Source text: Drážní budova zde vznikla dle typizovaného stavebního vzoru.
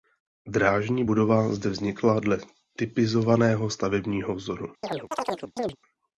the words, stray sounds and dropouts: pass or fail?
fail